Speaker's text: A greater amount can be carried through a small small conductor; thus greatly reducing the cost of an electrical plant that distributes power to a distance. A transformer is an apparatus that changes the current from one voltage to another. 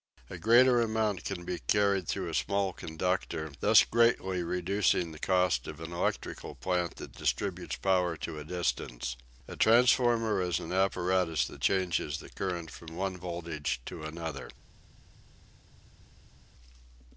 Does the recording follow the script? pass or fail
fail